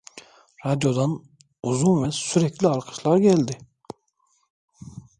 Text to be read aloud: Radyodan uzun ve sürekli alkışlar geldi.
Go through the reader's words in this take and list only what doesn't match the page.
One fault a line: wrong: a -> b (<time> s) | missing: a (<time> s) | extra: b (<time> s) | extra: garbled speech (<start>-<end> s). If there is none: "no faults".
no faults